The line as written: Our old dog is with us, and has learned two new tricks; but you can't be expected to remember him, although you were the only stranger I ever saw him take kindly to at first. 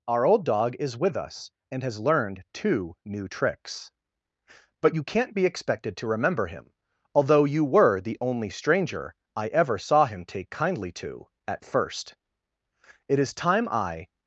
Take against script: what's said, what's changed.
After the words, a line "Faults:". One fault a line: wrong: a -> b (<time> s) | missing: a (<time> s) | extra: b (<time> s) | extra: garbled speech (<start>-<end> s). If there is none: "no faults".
Our old dog is with us, and has learned two new tricks; but you can't be expected to remember him, although you were the only stranger I ever saw him take kindly to at first. "It is time I
Faults:
extra: It is time I (13.1 s)